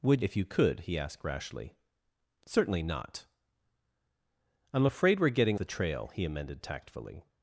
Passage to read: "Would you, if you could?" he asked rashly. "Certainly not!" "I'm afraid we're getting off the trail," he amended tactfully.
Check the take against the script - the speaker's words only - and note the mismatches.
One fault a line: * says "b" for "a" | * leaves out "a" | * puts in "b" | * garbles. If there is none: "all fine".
* leaves out "you"
* leaves out "off"